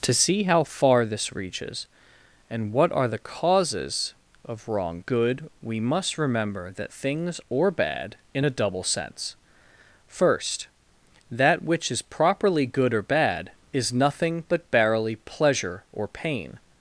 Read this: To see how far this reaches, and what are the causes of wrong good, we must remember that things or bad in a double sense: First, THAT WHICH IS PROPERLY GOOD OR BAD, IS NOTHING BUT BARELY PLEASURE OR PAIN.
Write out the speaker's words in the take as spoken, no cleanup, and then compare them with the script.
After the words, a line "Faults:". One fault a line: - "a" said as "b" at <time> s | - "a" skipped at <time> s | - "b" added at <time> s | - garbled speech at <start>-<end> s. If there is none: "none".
To see how far this reaches, and what are the causes of wrong good, we must remember that things or bad in a double sense: First, THAT WHICH IS PROPERLY GOOD OR BAD, IS NOTHING BUT BARELY PLEASURE OR PAIN.
Faults:
none